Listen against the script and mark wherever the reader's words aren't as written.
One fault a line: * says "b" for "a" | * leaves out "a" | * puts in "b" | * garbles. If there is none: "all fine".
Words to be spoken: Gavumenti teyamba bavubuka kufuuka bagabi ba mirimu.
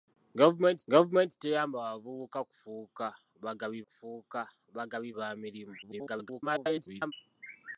* puts in "gavumenti"
* puts in "kufuuka bagabi"
* garbles